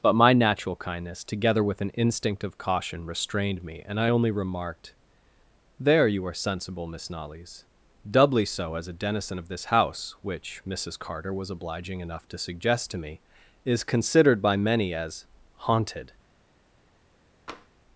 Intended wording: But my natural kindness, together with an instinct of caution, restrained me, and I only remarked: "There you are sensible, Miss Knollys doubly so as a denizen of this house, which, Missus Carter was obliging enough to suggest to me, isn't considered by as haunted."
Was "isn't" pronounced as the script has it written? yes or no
no